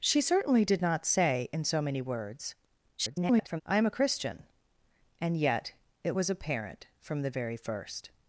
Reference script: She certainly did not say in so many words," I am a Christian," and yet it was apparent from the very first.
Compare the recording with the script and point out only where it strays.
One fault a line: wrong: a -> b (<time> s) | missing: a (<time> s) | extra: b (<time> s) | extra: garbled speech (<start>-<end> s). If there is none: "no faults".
extra: garbled speech (3.0-3.6 s)